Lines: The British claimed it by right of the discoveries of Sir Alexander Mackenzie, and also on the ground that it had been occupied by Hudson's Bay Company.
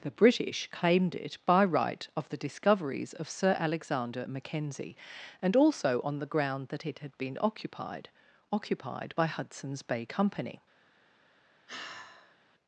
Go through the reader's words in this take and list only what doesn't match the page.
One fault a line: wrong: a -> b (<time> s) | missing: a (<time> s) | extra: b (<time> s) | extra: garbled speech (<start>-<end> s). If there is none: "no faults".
extra: occupied (8.5 s)